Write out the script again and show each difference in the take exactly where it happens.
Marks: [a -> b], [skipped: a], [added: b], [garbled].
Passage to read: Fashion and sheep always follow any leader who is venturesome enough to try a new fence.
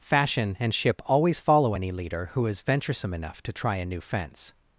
Fashion and [sheep -> ship] always follow any leader who is venturesome enough to try a new fence.